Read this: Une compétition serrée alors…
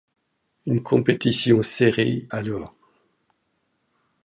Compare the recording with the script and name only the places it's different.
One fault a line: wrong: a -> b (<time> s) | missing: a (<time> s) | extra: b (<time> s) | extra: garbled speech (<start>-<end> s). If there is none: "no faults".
no faults